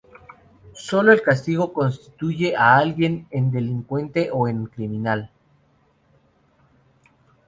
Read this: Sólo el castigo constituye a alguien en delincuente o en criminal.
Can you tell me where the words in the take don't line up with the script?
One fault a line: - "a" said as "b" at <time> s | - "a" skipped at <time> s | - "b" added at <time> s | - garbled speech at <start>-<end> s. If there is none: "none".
none